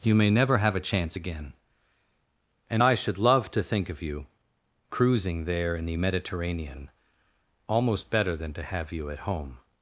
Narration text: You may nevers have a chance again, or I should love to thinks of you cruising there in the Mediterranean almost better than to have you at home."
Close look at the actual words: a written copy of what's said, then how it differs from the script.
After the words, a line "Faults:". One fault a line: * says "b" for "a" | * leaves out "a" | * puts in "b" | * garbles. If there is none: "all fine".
You may never have a chance again, and I should love to think of you cruising there in the Mediterranean almost better than to have you at home."
Faults:
* says "never" for "nevers"
* says "and" for "or"
* says "think" for "thinks"